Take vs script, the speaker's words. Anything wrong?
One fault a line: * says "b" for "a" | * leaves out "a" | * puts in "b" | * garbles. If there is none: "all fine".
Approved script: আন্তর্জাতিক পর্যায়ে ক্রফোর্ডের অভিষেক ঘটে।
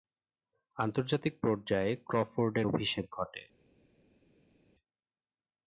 all fine